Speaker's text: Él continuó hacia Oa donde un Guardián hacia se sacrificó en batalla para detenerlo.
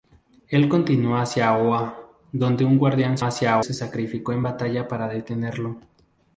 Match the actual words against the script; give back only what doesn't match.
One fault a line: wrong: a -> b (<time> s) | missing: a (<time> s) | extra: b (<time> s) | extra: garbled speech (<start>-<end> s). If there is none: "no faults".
no faults